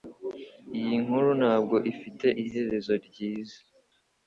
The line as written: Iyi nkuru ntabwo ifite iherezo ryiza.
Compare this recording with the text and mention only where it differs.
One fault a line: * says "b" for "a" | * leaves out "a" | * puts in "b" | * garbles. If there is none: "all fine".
all fine